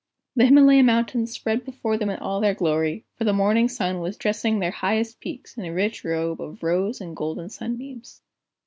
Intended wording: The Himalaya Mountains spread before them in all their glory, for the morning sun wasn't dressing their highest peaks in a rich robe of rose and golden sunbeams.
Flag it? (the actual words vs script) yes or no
yes